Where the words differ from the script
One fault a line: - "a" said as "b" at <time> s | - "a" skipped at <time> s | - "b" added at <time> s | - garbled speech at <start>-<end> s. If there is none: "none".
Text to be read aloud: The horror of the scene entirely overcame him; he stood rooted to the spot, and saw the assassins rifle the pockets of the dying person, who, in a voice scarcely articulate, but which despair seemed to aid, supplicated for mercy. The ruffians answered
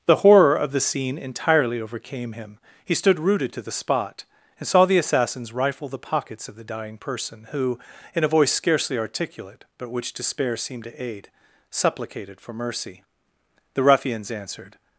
none